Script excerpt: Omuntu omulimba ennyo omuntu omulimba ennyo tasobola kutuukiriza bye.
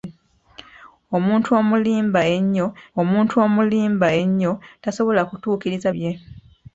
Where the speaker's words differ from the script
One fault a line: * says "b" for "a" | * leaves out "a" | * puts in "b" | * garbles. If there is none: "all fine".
all fine